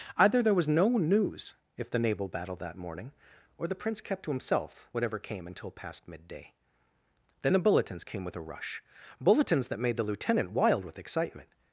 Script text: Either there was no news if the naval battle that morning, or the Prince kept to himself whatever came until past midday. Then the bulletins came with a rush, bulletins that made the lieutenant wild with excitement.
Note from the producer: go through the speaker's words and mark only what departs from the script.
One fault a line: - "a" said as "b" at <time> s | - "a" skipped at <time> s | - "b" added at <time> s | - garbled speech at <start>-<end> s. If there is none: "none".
none